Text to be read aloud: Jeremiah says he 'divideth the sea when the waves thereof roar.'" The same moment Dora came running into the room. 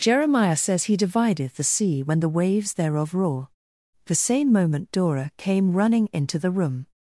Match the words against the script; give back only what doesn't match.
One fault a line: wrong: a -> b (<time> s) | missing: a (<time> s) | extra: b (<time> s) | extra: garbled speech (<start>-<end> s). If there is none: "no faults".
no faults